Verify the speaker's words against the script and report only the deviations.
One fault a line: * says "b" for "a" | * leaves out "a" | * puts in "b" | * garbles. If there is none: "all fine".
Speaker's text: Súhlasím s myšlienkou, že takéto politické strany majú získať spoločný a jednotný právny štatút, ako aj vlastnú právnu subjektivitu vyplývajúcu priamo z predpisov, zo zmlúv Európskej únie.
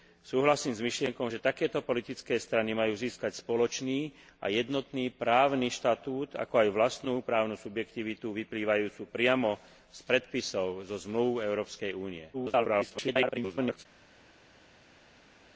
* garbles